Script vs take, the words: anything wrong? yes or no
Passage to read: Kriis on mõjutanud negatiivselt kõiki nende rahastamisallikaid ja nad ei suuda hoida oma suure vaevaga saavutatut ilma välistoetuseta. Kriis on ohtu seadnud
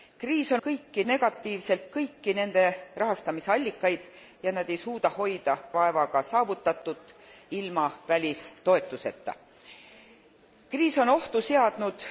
yes